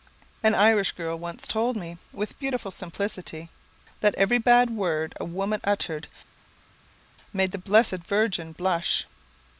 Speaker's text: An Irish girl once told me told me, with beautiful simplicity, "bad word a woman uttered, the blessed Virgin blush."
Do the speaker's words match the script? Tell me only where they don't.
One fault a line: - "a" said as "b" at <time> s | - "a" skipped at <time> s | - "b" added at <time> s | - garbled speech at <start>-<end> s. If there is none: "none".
- "told me" skipped at 2.0 s
- "that every" added at 4.0 s
- "made" added at 7.3 s